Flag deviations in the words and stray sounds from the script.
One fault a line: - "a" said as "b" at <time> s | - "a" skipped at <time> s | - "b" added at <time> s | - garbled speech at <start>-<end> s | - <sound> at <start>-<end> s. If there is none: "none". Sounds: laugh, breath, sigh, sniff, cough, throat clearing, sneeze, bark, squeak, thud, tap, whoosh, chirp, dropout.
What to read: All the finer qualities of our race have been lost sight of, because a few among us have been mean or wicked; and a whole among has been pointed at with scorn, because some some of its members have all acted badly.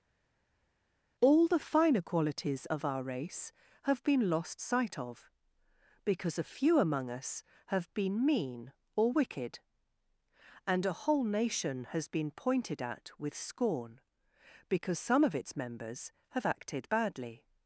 - "among" said as "nation" at 11.2 s
- "some" skipped at 15.2 s
- "all" skipped at 16.5 s